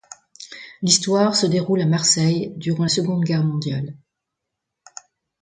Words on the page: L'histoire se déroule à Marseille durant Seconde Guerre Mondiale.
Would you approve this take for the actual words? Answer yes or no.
yes